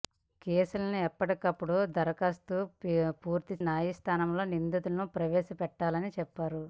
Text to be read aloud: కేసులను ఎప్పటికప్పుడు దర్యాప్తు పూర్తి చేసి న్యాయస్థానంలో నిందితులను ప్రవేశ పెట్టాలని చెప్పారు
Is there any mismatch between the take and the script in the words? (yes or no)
yes